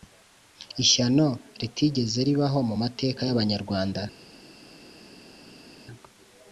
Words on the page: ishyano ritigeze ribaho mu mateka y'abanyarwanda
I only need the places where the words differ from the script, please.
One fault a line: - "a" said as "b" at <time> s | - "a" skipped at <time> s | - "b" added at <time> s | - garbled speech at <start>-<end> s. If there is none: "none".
none